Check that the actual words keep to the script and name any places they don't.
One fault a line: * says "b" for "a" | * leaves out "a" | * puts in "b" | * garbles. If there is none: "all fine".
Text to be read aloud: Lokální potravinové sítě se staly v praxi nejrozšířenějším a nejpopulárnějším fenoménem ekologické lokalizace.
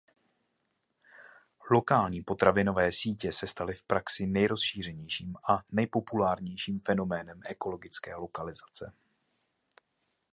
all fine